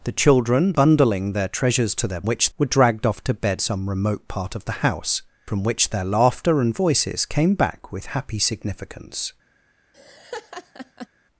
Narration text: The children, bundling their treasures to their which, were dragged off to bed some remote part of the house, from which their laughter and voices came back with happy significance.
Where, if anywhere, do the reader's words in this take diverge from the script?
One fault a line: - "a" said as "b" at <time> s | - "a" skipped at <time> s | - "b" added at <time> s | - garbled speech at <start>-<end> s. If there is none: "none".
none